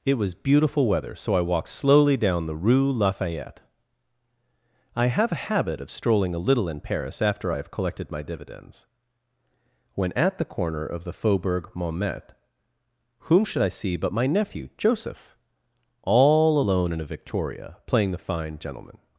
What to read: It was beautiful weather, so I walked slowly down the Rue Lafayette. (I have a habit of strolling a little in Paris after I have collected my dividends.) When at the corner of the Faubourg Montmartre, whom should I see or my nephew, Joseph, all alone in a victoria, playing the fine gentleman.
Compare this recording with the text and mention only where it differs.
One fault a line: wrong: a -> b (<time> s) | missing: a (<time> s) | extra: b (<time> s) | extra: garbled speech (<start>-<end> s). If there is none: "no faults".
wrong: or -> but (14.0 s)